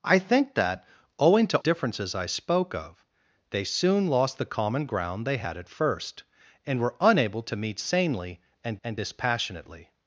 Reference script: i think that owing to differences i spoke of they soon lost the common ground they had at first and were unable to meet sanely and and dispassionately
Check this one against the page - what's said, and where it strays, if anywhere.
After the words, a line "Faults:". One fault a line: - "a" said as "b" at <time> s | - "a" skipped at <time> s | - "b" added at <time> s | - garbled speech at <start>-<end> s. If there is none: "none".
i think that owing to differences i spoke of they soon lost the common ground they had at first and were unable to meet sanely and and dispassionately
Faults:
none